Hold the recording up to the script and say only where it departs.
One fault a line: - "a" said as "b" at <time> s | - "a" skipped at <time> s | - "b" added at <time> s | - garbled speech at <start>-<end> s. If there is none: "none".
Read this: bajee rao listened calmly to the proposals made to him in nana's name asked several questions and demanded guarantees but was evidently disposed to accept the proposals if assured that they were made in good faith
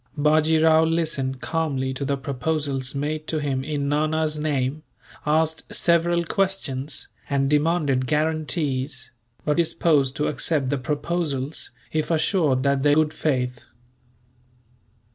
- "was evidently" skipped at 9.6 s
- "were made in" skipped at 13.0 s